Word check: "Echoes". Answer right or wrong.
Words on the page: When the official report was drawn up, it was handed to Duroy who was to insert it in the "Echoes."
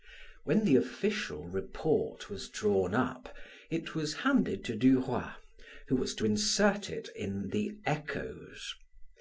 right